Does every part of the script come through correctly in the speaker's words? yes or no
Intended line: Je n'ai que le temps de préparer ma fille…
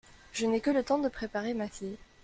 yes